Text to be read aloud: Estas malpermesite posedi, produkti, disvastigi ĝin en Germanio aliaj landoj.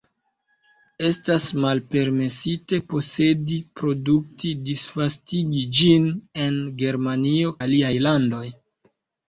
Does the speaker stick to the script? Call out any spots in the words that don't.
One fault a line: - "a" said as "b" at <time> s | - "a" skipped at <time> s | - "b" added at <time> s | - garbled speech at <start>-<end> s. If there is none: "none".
none